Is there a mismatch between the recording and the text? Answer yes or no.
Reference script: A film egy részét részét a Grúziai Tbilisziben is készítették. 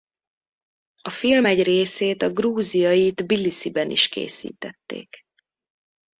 yes